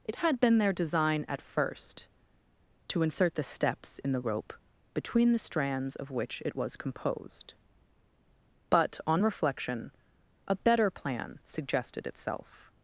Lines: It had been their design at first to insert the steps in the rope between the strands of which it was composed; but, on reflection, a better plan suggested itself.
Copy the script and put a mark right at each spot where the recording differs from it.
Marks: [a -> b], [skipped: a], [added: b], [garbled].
It had been their design at first to insert the steps in the rope between the strands of which it was composed; but, on reflection, a better plan suggested itself.